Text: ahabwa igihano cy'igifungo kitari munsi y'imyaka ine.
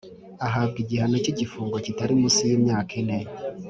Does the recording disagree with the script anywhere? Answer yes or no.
no